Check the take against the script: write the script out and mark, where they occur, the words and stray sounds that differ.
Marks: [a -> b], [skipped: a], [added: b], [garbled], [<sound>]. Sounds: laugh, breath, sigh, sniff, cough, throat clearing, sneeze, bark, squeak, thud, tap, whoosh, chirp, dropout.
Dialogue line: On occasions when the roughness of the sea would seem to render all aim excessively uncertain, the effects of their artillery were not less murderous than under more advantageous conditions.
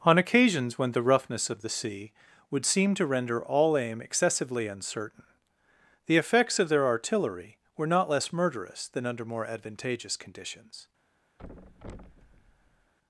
On occasions when the roughness of the sea would seem to render all aim excessively uncertain, the effects of their artillery were not less murderous than under more advantageous conditions. [thud]